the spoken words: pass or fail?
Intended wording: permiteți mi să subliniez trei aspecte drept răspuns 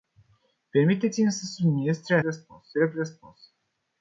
fail